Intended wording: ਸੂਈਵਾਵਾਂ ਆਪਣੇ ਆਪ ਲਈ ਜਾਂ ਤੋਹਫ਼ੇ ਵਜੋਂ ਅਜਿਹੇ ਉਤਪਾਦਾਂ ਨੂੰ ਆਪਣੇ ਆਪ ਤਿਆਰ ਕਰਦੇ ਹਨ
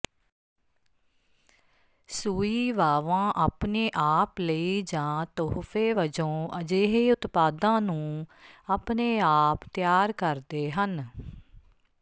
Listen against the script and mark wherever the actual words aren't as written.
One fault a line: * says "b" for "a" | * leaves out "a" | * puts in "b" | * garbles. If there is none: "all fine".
all fine